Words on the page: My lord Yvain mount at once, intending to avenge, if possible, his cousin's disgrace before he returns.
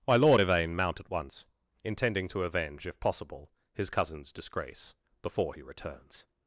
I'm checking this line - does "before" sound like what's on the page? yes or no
yes